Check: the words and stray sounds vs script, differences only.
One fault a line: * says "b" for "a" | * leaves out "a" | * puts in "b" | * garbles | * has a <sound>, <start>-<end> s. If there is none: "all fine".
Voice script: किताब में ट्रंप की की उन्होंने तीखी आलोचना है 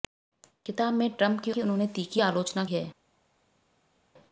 all fine